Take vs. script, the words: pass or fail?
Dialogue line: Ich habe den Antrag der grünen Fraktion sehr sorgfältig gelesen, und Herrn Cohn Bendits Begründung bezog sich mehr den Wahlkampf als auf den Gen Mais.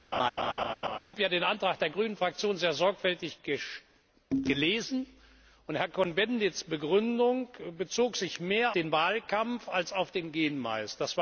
pass